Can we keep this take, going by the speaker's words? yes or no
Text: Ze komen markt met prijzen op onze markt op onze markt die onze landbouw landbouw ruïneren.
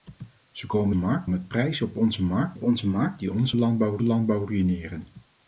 yes